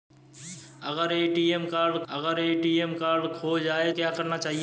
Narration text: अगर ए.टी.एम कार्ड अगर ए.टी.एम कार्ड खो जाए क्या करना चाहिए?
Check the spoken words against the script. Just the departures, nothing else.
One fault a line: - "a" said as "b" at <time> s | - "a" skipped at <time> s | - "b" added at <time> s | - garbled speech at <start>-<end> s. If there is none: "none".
none